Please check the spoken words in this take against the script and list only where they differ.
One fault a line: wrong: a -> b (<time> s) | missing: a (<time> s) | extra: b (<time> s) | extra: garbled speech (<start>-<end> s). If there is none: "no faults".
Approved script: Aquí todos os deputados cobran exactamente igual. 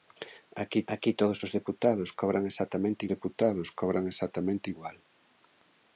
extra: aquí (0.9 s)
extra: deputados cobran exactamente (3.1 s)